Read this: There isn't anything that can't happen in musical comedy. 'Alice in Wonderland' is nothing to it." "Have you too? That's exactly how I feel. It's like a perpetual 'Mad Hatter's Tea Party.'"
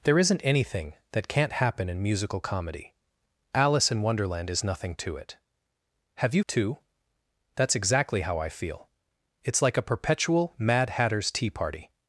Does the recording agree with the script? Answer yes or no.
yes